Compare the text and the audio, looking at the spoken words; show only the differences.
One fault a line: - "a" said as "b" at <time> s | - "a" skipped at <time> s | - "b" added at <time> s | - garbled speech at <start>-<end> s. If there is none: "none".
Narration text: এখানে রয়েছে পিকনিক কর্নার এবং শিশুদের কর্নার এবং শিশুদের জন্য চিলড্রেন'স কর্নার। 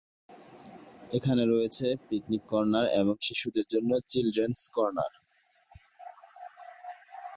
- "কর্নার এবং শিশুদের" skipped at 3.6 s